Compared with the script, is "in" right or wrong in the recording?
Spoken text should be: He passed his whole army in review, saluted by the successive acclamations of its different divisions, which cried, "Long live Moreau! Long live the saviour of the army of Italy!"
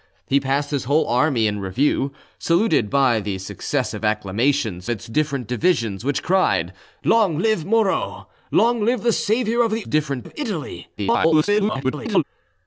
right